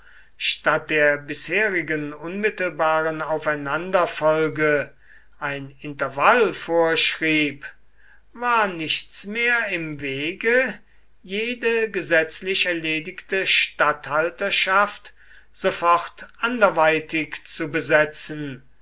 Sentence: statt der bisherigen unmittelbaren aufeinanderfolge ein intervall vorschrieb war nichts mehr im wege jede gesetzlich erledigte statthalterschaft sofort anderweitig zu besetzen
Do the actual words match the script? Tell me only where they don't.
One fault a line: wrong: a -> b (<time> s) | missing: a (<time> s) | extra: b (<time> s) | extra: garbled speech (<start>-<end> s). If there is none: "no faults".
no faults